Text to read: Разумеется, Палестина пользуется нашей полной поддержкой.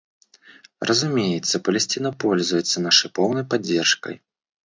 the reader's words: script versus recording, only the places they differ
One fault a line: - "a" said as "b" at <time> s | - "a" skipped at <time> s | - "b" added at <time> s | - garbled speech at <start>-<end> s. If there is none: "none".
none